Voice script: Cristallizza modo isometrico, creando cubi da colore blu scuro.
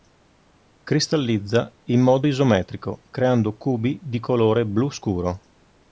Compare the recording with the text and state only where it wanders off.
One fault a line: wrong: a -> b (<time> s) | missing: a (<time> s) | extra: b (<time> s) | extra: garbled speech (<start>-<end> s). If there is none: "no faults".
extra: in (1.8 s)
wrong: da -> di (4.0 s)